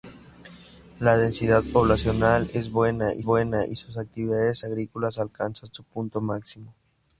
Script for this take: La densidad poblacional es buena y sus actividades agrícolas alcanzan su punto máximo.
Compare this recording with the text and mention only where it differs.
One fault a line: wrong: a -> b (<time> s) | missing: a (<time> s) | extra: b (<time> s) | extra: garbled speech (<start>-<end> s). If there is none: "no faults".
extra: buena y (3.2 s)